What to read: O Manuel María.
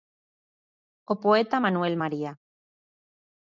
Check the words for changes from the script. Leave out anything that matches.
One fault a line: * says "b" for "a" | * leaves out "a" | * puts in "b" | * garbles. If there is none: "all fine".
* puts in "poeta"